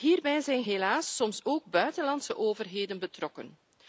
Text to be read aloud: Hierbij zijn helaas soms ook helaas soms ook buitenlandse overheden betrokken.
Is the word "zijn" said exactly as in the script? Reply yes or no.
yes